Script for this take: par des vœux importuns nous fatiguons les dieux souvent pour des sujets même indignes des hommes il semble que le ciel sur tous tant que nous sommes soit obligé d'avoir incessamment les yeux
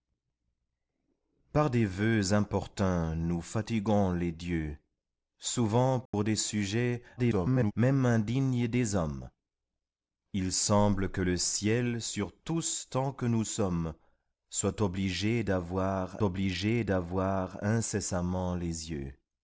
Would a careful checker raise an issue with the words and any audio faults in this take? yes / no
yes